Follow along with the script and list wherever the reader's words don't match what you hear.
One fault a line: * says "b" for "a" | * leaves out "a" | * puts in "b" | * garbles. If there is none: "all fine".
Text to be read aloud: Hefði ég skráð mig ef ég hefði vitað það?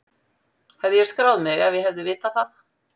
all fine